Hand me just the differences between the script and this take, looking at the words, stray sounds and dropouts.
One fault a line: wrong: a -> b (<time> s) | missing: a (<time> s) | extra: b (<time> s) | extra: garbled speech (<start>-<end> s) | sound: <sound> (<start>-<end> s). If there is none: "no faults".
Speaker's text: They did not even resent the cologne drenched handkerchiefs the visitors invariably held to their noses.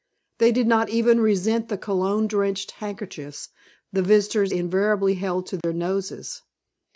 sound: dropout (5.6-5.6 s)